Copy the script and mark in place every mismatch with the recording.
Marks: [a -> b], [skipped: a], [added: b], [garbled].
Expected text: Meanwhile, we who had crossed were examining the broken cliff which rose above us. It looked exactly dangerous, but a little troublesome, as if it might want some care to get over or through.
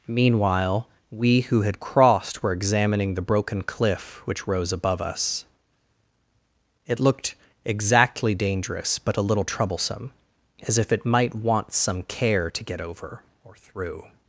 Meanwhile, we who had crossed were examining the broken cliff which rose above us. It looked exactly dangerous, but a little troublesome, as if it might want some care to get over or through.